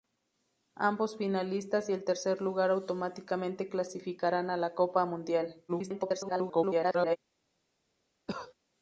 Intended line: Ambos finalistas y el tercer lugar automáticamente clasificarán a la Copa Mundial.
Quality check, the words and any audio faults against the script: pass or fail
fail